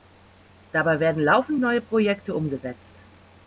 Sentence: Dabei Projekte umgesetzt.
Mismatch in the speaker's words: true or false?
true